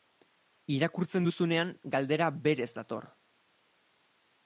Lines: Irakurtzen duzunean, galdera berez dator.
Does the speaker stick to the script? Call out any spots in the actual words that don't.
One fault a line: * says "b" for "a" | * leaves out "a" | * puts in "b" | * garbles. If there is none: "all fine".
all fine